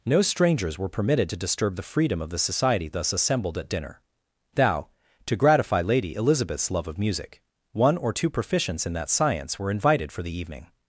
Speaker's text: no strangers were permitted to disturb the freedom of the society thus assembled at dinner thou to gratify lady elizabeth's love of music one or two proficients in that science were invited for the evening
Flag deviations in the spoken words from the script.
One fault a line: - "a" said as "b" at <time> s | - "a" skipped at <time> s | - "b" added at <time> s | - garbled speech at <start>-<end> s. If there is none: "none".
none